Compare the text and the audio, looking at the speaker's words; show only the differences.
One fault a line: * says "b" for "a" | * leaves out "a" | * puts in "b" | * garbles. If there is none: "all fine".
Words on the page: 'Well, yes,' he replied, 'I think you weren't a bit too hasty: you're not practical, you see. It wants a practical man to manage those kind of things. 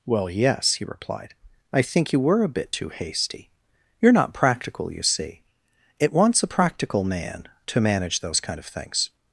* says "were" for "weren't"